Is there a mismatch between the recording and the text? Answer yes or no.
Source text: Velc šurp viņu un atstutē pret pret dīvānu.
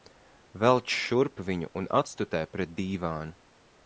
yes